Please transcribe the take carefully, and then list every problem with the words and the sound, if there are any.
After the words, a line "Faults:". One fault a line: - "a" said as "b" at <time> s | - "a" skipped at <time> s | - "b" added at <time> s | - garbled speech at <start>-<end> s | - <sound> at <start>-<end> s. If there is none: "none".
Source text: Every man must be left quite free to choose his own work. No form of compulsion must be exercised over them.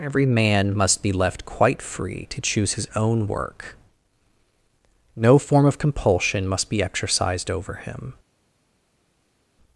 Every man must be left quite free to choose his own work. No form of compulsion must be exercised over him.
Faults:
- "them" said as "him" at 7.7 s